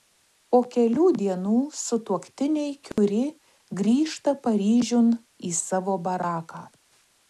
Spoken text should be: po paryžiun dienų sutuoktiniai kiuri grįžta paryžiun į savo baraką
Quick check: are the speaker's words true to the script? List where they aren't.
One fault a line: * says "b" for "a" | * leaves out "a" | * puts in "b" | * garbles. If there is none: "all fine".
* says "kelių" for "paryžiun"